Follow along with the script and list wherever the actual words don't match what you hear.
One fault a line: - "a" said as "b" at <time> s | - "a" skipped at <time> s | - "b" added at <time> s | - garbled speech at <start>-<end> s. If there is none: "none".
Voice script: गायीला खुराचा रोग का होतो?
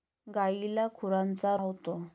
- "रोग का" skipped at 1.6 s